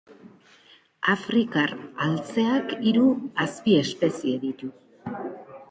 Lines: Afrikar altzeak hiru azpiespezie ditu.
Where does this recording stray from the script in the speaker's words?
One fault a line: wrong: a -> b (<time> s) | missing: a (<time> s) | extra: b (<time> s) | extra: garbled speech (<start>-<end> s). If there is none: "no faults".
no faults